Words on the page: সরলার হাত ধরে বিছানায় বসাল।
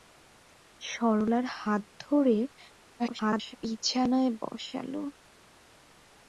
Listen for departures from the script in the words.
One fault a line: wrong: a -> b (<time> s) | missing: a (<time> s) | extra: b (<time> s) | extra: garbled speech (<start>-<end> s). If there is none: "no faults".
extra: garbled speech (3.0-3.6 s)